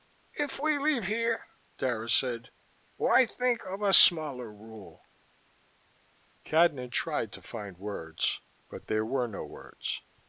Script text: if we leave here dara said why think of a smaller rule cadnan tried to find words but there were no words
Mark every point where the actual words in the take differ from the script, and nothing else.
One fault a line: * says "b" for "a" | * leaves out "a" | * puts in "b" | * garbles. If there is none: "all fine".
all fine